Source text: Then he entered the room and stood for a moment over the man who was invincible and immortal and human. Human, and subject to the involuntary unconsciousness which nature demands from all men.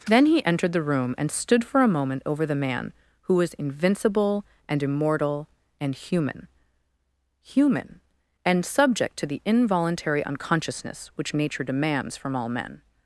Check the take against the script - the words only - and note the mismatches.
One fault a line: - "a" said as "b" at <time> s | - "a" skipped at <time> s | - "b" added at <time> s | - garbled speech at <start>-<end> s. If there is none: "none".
none